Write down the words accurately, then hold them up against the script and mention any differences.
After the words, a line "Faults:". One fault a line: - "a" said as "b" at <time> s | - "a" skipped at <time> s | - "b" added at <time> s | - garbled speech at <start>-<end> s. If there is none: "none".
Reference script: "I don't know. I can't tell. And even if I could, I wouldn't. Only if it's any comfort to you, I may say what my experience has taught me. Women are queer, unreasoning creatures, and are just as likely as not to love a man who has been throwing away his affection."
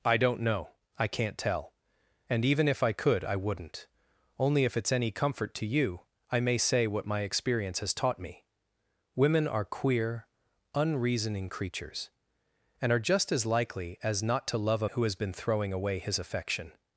"I don't know. I can't tell. And even if I could, I wouldn't. Only if it's any comfort to you, I may say what my experience has taught me. Women are queer, unreasoning creatures, and are just as likely as not to love a who has been throwing away his affection."
Faults:
- "man" skipped at 14.9 s